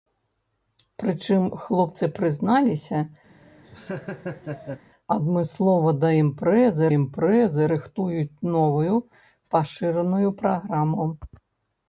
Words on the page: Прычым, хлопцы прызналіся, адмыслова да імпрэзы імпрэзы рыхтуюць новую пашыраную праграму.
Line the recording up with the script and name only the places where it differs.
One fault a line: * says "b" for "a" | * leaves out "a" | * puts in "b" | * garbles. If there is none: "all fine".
all fine